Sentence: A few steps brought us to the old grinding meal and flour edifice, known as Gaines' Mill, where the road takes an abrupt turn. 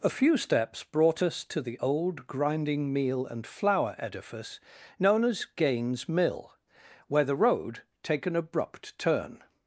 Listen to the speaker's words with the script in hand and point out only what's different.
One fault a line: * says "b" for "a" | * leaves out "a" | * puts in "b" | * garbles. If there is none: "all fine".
* says "take" for "takes"